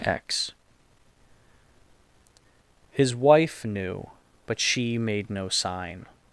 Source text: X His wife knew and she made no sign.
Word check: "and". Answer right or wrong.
wrong